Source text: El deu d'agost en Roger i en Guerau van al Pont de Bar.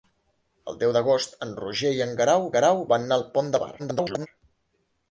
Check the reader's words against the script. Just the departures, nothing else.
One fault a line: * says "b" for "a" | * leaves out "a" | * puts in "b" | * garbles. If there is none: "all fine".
* puts in "Guerau"
* garbles